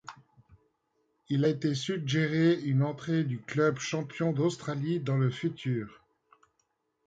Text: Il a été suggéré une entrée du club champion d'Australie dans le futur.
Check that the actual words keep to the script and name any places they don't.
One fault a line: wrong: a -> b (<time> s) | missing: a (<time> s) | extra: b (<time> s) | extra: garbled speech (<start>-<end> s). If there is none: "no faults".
missing: a (1.4 s)